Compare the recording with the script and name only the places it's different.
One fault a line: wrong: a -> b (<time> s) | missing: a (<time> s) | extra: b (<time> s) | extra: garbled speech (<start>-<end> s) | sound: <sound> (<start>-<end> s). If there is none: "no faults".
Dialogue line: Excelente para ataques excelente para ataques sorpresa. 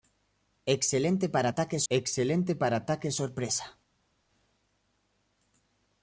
no faults